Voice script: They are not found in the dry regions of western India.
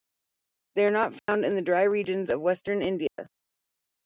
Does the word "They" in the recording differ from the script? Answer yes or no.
no